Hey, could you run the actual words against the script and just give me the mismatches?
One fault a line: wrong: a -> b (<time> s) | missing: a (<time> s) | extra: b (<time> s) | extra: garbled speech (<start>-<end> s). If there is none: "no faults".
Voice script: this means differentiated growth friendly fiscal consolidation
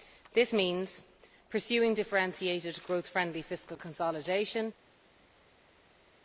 extra: pursuing (1.5 s)